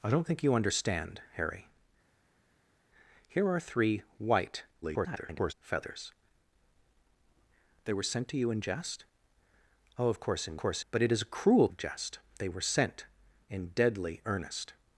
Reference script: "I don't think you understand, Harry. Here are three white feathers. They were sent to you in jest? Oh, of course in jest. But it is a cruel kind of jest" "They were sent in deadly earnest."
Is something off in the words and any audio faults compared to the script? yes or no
yes